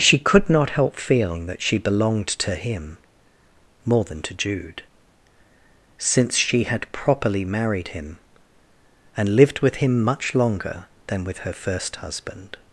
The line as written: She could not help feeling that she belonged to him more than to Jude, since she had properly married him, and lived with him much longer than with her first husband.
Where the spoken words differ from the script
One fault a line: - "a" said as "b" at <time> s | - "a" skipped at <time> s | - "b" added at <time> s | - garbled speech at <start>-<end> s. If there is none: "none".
none